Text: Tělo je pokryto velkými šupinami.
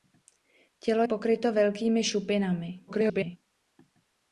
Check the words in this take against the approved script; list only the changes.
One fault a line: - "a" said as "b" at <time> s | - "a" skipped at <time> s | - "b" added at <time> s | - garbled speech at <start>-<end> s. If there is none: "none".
- "je" skipped at 1.0 s
- garbled speech at 2.9-3.4 s